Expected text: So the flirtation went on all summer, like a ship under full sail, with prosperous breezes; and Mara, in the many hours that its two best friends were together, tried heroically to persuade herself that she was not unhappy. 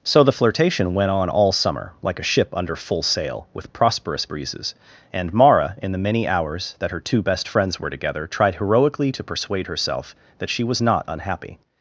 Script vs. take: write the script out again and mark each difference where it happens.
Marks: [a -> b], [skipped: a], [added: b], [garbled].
So the flirtation went on all summer, like a ship under full sail, with prosperous breezes; and Mara, in the many hours that [its -> her] two best friends were together, tried heroically to persuade herself that she was not unhappy.